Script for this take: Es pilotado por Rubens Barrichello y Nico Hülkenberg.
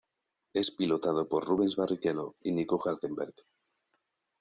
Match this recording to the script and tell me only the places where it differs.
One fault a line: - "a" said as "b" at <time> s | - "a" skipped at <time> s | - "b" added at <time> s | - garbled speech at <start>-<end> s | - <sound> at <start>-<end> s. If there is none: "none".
none